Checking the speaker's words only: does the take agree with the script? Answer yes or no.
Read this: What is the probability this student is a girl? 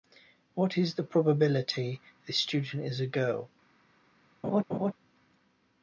yes